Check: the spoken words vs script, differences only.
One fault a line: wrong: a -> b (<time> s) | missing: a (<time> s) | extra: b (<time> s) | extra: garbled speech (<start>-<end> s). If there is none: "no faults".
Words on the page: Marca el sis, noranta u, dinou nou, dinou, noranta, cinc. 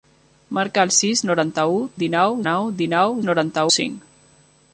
no faults